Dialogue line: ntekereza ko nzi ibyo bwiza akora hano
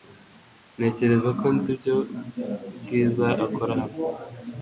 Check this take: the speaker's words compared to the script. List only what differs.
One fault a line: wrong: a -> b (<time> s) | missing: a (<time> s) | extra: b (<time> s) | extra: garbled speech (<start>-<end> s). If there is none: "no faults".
no faults